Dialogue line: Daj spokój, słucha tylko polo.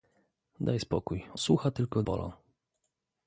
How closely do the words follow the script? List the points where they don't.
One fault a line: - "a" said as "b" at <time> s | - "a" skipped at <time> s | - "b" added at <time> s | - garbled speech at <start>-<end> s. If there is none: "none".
none